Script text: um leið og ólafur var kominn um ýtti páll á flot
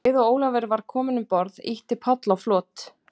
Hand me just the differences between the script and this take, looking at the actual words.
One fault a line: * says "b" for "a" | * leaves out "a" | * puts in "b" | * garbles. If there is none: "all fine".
* puts in "borð"